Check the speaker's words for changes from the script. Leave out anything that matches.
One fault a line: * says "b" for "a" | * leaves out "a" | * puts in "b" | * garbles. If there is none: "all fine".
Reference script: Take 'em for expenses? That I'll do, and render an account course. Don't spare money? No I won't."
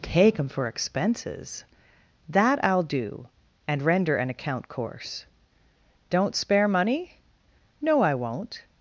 all fine